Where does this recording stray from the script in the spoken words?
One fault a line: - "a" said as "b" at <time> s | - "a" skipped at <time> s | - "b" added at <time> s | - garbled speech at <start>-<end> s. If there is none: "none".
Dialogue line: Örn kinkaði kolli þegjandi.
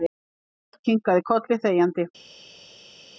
none